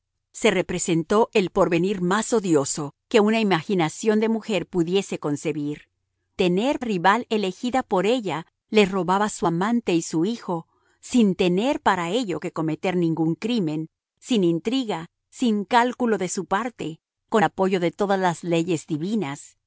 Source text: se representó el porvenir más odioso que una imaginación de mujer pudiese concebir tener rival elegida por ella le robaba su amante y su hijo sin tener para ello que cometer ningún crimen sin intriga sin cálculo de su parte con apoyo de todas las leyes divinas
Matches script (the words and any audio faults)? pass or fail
pass